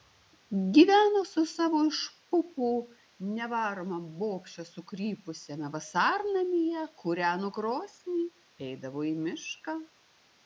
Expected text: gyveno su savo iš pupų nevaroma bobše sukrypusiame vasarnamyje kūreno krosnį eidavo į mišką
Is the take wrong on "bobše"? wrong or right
right